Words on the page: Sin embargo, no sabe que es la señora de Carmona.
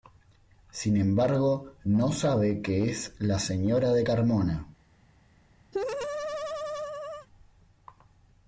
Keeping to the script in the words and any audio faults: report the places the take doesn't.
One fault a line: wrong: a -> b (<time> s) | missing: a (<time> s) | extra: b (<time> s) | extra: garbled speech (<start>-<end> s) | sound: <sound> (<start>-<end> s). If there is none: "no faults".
sound: laugh (5.7-7.3 s)